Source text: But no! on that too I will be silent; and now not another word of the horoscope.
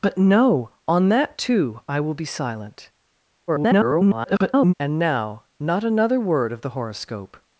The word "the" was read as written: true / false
true